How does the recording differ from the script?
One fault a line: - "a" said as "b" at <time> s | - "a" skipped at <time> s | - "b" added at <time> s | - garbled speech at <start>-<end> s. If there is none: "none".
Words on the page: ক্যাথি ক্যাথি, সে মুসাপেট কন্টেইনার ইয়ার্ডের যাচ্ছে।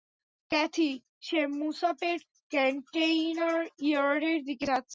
- "ক্যাথি" skipped at 0.9 s
- "দিকে" added at 4.4 s